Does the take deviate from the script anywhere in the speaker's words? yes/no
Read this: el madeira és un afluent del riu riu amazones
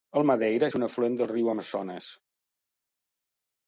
yes